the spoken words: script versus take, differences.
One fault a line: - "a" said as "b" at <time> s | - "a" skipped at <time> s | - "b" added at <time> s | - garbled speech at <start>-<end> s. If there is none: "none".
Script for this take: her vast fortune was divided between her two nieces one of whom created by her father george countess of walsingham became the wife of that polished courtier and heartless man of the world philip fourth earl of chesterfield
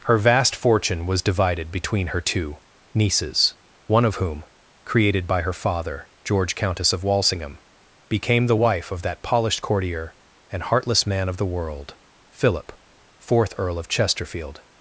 none